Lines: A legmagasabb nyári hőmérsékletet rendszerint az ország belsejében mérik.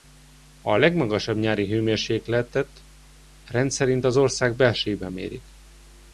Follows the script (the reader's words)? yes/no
yes